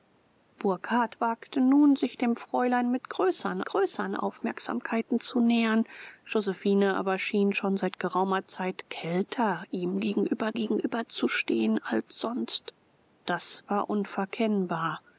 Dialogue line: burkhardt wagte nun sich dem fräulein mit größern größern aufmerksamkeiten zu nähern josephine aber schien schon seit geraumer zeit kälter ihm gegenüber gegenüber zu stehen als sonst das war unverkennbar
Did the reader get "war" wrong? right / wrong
right